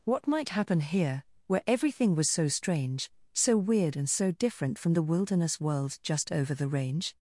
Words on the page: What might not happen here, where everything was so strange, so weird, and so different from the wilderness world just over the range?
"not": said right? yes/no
no